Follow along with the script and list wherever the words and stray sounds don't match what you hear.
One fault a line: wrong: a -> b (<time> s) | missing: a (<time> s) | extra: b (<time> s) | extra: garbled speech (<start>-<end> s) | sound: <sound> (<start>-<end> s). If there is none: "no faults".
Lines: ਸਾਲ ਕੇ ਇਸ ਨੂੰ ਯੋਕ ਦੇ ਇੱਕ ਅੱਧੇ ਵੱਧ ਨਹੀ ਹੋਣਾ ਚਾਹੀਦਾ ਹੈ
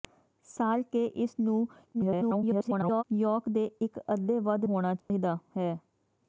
extra: garbled speech (1.9-3.0 s)
missing: ਨਹੀ (4.7 s)
sound: dropout (5.0-5.1 s)